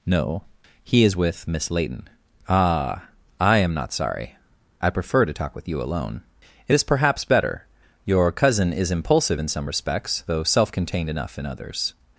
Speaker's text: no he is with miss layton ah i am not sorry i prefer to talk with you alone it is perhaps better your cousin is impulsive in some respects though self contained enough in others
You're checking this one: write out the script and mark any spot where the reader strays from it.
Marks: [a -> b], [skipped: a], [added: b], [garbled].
no he is with miss layton ah i am not sorry i prefer to talk with you alone it is perhaps better your cousin is impulsive in some respects though self contained enough in others